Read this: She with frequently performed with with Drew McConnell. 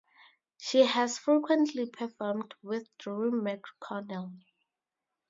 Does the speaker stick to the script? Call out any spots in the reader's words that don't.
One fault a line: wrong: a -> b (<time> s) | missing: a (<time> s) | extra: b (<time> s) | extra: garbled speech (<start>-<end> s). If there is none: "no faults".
wrong: with -> has (0.8 s)
missing: with (2.9 s)